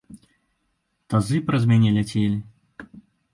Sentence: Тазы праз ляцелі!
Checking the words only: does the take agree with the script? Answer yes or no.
no